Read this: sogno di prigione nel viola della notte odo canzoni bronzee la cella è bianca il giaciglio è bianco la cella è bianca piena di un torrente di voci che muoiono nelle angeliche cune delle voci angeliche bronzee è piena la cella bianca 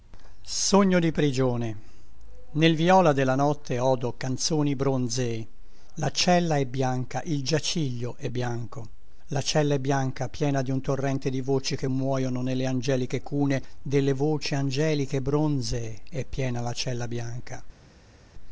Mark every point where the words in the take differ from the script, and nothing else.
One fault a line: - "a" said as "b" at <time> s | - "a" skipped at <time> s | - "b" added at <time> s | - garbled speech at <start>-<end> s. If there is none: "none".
none